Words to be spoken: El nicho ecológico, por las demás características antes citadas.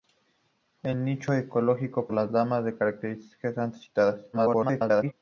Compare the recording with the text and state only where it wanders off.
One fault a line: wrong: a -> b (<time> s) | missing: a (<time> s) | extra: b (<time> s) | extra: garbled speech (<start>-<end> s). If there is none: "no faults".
missing: por (2.1 s)
extra: garbled speech (4.3-5.1 s)